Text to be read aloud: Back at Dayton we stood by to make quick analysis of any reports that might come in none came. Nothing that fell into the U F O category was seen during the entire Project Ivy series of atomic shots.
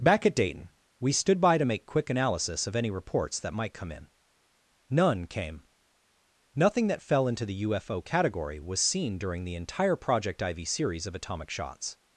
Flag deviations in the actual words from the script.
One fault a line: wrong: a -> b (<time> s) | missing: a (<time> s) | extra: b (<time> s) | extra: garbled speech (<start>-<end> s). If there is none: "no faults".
no faults